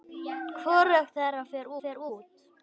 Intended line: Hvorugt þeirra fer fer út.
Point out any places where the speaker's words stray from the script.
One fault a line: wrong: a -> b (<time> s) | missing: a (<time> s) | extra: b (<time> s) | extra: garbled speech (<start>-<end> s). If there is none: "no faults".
no faults